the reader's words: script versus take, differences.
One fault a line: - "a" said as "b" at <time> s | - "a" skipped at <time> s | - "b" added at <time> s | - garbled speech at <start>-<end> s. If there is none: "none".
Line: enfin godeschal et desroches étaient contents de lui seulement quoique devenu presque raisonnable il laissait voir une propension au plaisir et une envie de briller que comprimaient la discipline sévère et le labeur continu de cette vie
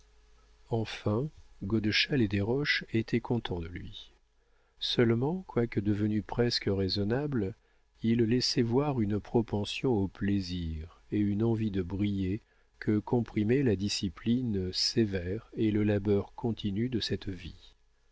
none